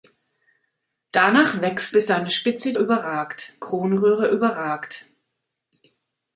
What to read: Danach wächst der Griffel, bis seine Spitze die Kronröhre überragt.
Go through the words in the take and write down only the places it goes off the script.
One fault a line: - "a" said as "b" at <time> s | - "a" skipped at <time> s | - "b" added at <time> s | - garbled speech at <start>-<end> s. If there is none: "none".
- "der Griffel" skipped at 1.9 s
- "die" said as "überragt" at 2.8 s